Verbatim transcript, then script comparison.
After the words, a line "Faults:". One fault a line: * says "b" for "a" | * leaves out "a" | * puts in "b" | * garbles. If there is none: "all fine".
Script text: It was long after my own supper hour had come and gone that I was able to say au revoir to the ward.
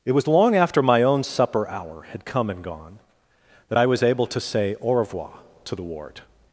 It was long after my own supper hour had come and gone that I was able to say au revoir to the ward.
Faults:
all fine